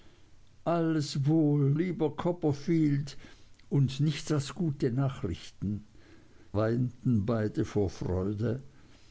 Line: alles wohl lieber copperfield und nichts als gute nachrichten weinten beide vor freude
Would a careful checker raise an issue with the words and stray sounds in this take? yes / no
no